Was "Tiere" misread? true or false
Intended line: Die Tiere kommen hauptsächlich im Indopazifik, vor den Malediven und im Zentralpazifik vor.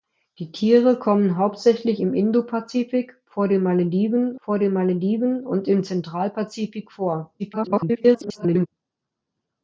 false